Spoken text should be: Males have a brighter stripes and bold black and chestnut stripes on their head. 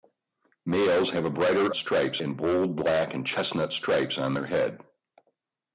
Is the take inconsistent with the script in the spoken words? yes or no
no